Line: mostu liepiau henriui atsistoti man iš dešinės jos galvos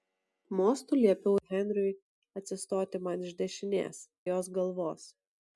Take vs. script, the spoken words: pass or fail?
pass